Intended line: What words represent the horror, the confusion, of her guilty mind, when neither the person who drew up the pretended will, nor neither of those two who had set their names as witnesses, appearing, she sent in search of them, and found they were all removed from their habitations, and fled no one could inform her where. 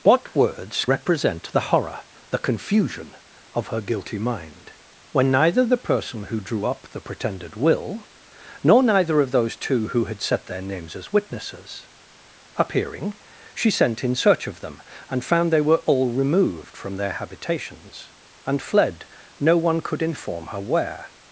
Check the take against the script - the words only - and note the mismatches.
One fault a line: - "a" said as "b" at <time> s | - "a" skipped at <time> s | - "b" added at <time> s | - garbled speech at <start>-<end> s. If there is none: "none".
none